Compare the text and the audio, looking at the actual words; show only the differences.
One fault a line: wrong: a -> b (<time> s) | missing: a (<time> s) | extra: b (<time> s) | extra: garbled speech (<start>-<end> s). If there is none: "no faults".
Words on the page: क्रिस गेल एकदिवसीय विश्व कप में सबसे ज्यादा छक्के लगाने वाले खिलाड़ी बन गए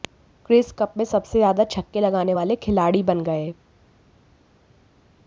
missing: गेल एकदिवसीय विश्व (0.7 s)